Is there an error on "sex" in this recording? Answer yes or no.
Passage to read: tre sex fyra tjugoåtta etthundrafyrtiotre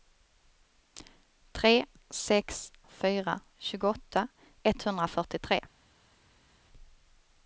no